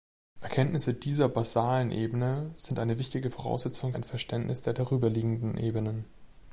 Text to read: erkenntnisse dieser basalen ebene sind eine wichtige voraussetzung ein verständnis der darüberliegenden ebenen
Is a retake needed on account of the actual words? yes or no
no